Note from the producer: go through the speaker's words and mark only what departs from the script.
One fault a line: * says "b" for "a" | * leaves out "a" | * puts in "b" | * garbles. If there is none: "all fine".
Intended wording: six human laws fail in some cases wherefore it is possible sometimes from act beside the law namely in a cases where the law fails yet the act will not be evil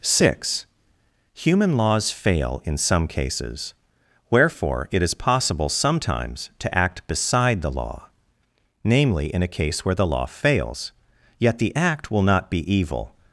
* says "to" for "from"
* says "case" for "cases"